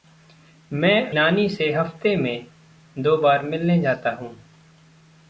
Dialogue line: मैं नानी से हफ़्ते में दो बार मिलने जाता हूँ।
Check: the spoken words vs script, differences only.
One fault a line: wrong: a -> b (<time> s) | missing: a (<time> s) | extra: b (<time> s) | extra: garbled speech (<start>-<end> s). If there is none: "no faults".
no faults